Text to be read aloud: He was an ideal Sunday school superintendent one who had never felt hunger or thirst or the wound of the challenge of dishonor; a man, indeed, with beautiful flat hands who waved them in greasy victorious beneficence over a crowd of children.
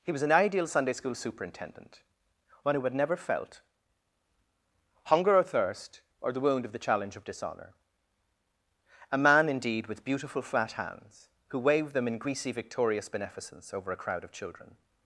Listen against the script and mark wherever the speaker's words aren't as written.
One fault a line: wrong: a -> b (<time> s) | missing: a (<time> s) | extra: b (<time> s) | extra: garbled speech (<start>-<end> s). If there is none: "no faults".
no faults